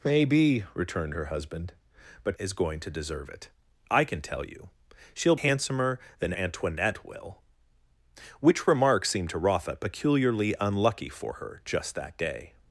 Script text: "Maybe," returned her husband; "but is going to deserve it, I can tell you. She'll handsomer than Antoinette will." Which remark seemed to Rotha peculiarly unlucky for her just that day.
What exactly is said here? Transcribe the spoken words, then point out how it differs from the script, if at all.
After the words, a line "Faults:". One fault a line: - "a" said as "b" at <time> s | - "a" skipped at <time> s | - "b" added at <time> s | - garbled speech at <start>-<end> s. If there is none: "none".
"Maybe," returned her husband; "but is going to deserve it, I can tell you. She'll handsomer than Antoinette will." Which remark seemed to Rotha peculiarly unlucky for her just that day.
Faults:
none